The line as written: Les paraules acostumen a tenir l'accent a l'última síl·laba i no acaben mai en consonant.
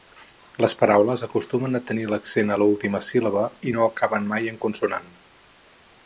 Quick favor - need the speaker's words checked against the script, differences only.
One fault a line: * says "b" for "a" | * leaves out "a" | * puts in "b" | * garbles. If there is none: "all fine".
all fine